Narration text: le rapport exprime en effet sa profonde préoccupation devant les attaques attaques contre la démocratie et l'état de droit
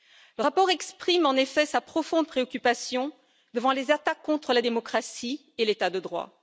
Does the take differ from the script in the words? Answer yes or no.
yes